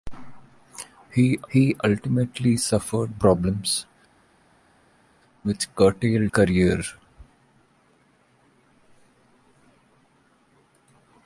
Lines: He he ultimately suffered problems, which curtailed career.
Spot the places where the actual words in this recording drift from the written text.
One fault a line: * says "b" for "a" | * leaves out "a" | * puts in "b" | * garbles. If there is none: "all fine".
all fine